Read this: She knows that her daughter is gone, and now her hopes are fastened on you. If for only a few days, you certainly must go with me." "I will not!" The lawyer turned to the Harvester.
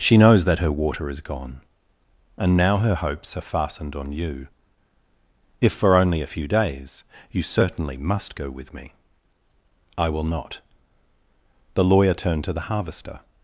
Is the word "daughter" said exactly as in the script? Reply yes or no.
no